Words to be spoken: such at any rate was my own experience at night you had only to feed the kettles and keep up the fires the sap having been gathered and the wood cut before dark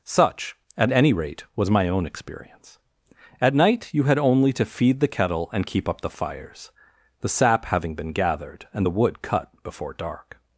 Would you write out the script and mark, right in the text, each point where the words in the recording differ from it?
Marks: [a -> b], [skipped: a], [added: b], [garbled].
such at any rate was my own experience at night you had only to feed the [kettles -> kettle] and keep up the fires the sap having been gathered and the wood cut before dark